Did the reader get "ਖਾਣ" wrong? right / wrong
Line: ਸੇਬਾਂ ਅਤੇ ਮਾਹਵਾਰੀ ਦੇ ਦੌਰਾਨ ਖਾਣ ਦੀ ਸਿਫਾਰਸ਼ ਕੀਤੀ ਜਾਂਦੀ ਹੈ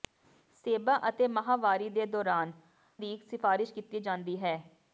wrong